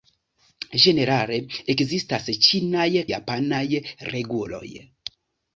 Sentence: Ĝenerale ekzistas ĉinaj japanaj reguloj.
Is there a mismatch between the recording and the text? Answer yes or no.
no